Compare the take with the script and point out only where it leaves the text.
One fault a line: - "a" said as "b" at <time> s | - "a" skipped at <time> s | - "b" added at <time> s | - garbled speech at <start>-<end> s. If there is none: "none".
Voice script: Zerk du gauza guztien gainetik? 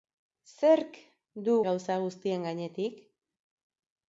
none